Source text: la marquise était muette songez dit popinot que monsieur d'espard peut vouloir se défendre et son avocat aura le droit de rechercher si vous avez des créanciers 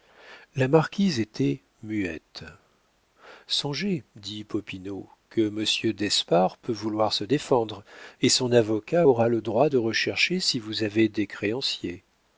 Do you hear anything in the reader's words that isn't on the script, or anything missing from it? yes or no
no